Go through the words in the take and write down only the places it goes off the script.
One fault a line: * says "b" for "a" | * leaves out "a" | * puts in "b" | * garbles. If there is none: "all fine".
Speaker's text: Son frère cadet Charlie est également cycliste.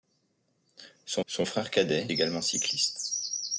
* puts in "son"
* leaves out "Charlie est"